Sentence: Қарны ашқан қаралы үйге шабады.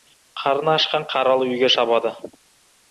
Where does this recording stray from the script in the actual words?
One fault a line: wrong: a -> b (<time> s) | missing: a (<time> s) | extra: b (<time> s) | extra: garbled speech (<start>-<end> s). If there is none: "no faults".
no faults